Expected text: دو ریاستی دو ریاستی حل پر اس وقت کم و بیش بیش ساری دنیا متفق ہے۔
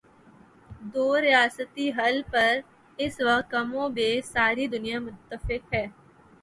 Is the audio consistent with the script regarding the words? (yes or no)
no